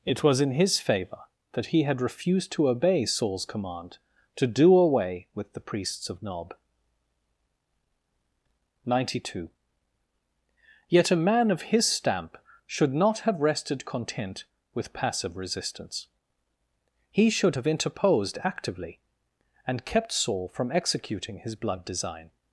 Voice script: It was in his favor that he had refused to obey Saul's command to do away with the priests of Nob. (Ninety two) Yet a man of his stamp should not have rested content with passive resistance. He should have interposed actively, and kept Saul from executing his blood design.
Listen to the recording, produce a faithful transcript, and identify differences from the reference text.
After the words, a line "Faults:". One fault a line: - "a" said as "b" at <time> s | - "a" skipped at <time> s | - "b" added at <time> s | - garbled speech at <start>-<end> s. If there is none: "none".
It was in his favor that he had refused to obey Saul's command to do away with the priests of Nob. (Ninety two) Yet a man of his stamp should not have rested content with passive resistance. He should have interposed actively, and kept Saul from executing his blood design.
Faults:
none